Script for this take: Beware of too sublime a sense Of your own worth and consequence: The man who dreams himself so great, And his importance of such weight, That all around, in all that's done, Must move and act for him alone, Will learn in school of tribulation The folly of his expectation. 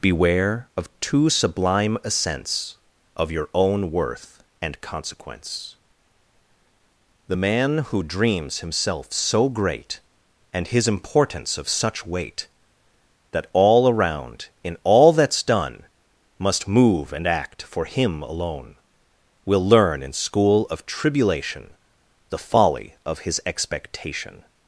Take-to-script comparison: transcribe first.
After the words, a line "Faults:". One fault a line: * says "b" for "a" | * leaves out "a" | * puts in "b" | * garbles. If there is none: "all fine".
Beware of too sublime a sense Of your own worth and consequence: The man who dreams himself so great, And his importance of such weight, That all around, in all that's done, Must move and act for him alone, Will learn in school of tribulation The folly of his expectation.
Faults:
all fine